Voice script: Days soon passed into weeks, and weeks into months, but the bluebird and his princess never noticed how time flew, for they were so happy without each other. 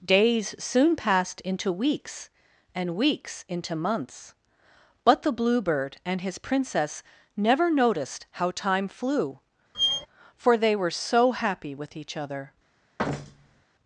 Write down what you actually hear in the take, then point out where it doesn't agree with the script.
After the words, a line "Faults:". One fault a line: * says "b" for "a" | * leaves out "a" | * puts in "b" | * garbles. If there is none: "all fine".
Days soon passed into weeks, and weeks into months, but the bluebird and his princess never noticed how time flew, for they were so happy with each other.
Faults:
* says "with" for "without"